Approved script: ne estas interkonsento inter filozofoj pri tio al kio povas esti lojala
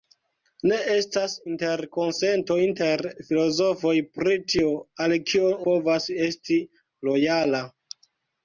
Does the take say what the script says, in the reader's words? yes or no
yes